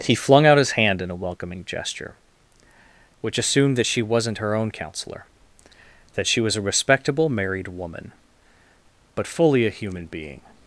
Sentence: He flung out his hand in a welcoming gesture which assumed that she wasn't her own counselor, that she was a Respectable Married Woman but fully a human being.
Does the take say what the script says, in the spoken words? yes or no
yes